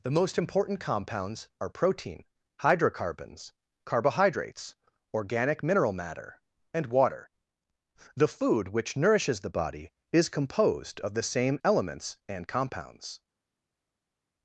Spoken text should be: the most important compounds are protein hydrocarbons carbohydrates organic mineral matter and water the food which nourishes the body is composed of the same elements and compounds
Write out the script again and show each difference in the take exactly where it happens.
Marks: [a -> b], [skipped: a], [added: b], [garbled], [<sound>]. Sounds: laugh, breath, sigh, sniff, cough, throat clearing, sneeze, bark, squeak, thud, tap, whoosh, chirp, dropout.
the most important compounds are protein hydrocarbons carbohydrates organic mineral matter and water the food which nourishes the body is composed of the same elements and compounds